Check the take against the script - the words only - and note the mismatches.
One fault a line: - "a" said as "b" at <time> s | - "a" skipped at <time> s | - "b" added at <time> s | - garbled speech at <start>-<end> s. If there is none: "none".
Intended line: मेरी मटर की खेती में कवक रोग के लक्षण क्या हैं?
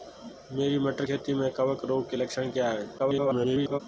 - "की" skipped at 1.1 s
- garbled speech at 3.0-3.8 s